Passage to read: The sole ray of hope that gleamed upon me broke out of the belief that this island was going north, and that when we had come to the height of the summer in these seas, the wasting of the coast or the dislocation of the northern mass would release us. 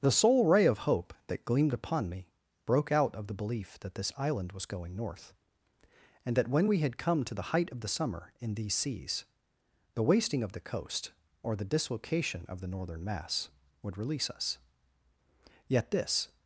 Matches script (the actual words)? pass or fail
fail